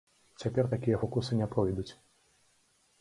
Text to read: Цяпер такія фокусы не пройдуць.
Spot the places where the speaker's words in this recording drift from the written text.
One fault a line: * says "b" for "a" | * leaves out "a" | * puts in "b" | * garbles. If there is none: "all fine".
all fine